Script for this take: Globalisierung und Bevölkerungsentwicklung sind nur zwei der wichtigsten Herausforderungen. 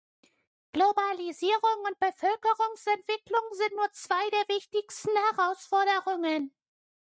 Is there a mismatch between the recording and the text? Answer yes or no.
no